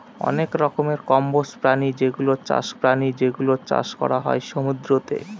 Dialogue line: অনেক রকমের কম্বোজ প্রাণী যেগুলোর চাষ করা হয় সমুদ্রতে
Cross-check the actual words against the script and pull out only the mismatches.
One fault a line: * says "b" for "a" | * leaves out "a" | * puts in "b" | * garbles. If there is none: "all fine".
* puts in "প্রাণী যেগুলোর চাষ"